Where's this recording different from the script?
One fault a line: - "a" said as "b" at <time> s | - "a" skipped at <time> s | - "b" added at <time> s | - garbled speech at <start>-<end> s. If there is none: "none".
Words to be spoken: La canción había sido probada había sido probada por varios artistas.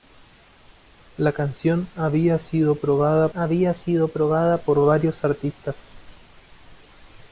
none